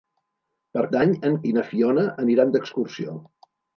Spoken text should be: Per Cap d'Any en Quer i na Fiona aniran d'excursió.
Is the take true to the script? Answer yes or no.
no